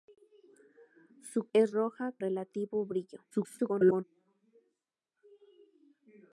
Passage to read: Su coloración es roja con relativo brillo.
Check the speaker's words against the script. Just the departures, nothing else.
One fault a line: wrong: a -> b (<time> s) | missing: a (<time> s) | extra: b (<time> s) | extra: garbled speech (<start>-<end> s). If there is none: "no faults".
missing: coloración (1.5 s)
missing: con (2.1 s)
extra: garbled speech (3.3-4.0 s)